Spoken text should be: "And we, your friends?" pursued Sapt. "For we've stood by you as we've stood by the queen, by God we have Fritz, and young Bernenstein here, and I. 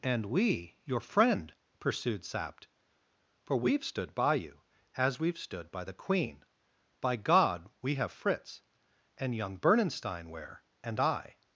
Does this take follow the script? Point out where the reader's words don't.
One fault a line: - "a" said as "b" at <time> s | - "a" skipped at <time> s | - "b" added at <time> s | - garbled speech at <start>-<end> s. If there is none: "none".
- "friends" said as "friend" at 1.0 s
- "here" said as "where" at 10.3 s